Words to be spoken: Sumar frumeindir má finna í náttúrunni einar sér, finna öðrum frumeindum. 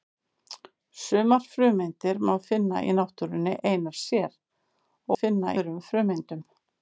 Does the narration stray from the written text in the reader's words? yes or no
no